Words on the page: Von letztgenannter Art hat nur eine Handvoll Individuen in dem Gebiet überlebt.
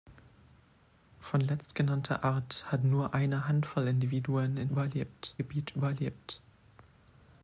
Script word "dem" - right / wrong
wrong